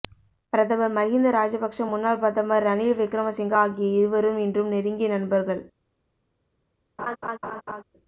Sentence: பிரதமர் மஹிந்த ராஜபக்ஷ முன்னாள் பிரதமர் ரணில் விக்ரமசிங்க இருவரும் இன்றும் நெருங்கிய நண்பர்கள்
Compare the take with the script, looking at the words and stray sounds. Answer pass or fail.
fail